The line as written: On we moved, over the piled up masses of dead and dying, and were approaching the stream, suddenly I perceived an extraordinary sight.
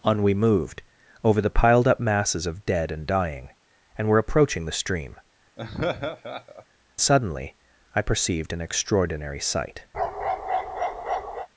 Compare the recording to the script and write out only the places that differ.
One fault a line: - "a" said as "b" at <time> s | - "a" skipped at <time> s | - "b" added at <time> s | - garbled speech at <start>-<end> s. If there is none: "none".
none